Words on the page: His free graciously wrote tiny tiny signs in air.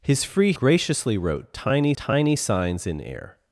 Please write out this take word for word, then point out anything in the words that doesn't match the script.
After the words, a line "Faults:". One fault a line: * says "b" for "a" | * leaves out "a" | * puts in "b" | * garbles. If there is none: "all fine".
His free graciously wrote tiny tiny signs in air.
Faults:
all fine